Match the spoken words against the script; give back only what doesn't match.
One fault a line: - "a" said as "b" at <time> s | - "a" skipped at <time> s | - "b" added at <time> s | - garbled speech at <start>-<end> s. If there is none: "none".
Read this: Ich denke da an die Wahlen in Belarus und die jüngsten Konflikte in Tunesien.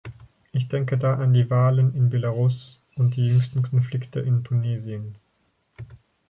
none